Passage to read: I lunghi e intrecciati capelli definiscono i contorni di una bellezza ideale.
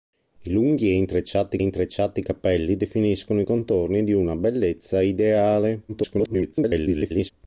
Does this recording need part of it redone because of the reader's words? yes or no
yes